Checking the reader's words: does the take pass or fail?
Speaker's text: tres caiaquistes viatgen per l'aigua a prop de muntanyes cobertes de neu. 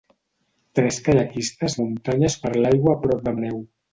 fail